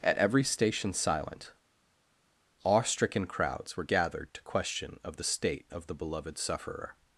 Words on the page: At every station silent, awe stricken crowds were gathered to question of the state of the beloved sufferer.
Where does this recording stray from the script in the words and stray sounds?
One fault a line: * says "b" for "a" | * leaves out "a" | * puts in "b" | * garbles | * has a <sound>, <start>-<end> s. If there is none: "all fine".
all fine